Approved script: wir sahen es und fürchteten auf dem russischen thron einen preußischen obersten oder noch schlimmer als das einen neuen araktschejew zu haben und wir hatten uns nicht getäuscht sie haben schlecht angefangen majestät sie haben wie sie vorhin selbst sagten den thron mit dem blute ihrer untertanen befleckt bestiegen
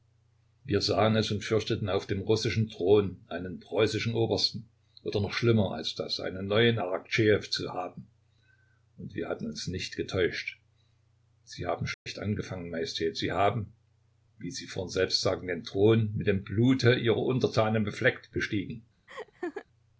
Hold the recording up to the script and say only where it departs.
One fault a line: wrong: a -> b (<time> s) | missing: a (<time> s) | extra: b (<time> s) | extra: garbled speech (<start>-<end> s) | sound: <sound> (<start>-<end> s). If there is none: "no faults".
sound: dropout (11.9-12.1 s)
sound: laugh (19.1-19.7 s)